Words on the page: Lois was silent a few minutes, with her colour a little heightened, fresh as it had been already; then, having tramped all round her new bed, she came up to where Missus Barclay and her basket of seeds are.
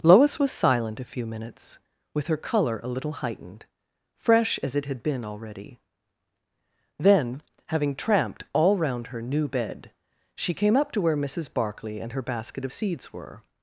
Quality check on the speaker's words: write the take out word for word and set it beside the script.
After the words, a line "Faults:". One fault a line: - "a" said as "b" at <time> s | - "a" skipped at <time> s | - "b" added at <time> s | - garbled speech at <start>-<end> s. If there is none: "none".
Lois was silent a few minutes, with her colour a little heightened, fresh as it had been already; then, having tramped all round her new bed, she came up to where Missus Barclay and her basket of seeds were.
Faults:
- "are" said as "were" at 13.1 s